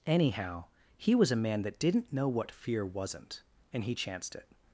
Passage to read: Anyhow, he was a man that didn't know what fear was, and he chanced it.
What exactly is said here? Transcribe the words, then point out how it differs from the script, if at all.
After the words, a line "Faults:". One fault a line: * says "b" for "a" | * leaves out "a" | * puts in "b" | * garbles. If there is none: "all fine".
Anyhow, he was a man that didn't know what fear wasn't, and he chanced it.
Faults:
* says "wasn't" for "was"